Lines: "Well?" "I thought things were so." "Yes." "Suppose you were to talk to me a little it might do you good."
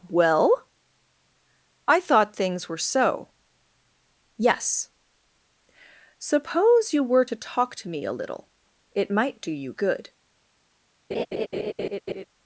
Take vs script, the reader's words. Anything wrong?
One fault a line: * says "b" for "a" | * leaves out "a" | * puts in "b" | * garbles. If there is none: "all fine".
all fine